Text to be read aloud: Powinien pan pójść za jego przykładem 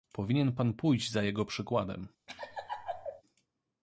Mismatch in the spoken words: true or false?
false